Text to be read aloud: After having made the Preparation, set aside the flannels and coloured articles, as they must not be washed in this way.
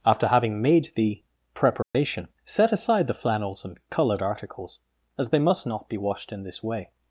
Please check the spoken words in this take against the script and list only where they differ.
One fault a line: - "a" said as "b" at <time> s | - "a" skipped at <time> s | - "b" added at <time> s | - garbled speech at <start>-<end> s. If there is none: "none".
none